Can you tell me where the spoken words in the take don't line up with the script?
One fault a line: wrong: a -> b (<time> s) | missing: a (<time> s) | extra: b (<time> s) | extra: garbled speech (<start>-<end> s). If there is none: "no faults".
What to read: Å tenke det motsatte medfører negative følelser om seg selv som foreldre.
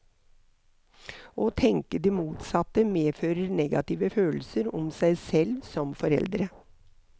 no faults